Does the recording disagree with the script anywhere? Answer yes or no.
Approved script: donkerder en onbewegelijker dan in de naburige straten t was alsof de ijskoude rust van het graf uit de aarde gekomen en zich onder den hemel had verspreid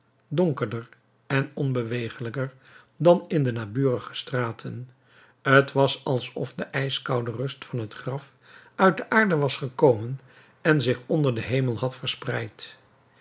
yes